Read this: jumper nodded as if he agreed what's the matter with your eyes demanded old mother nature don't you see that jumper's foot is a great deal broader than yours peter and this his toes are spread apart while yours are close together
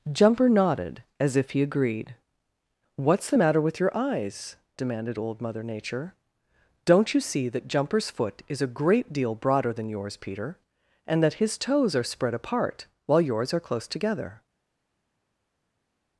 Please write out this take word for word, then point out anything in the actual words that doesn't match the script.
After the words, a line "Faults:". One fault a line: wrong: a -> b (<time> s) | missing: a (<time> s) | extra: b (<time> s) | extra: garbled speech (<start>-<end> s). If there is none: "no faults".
jumper nodded as if he agreed what's the matter with your eyes demanded old mother nature don't you see that jumper's foot is a great deal broader than yours peter and that his toes are spread apart while yours are close together
Faults:
wrong: this -> that (11.2 s)